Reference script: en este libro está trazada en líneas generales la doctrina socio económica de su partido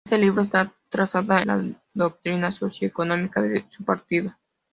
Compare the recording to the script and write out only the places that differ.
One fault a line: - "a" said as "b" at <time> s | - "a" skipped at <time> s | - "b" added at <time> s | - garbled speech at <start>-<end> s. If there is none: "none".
- "en líneas generales" skipped at 1.4 s